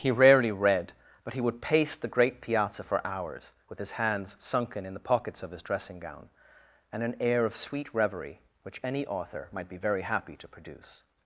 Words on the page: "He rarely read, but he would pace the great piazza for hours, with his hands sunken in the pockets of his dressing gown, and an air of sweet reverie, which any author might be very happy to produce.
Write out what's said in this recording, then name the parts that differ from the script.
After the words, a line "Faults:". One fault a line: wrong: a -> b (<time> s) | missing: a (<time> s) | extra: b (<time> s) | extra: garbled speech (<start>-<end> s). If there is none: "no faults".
"He rarely read, but he would pace the great piazza for hours, with his hands sunken in the pockets of his dressing gown, and an air of sweet reverie, which any author might be very happy to produce.
Faults:
no faults